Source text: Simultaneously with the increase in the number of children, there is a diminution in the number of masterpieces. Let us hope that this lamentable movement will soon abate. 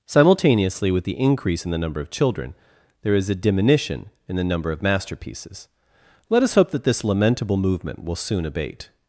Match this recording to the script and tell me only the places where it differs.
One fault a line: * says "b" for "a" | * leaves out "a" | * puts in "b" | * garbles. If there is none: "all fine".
all fine